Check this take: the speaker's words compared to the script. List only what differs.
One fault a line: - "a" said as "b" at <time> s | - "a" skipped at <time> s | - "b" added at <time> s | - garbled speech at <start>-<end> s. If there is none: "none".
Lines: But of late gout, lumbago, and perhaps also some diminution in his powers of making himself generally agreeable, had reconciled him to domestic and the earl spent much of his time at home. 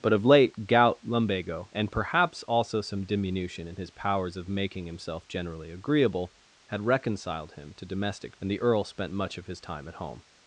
none